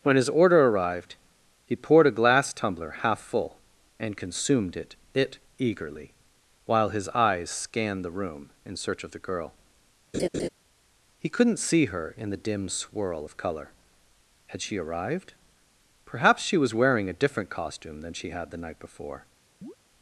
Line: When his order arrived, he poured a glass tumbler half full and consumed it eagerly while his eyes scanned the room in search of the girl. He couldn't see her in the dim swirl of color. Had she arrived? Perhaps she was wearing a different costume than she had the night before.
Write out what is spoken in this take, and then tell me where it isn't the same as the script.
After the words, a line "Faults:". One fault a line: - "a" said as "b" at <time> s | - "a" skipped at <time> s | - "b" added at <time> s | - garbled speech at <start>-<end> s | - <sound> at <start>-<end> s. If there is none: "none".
When his order arrived, he poured a glass tumbler half full and consumed it it eagerly while his eyes scanned the room in search of the girl. He couldn't see her in the dim swirl of color. Had she arrived? Perhaps she was wearing a different costume than she had the night before.
Faults:
- "it" added at 5.1 s
- laugh at 10.1-10.5 s
- chirp at 19.6-19.8 s